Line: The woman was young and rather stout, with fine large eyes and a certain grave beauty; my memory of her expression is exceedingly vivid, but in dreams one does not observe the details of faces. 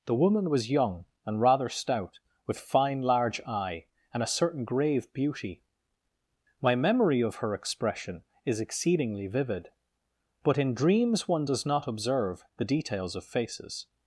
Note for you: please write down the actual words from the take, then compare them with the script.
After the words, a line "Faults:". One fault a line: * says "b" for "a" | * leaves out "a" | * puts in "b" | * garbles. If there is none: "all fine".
The woman was young and rather stout, with fine large eye and a certain grave beauty; my memory of her expression is exceedingly vivid, but in dreams one does not observe the details of faces.
Faults:
* says "eye" for "eyes"